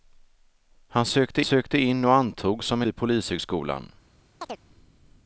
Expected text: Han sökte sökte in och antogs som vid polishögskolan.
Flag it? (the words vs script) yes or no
no